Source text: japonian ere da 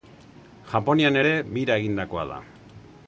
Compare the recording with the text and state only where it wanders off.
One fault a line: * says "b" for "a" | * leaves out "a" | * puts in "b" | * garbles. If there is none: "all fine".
* puts in "bira egindakoa"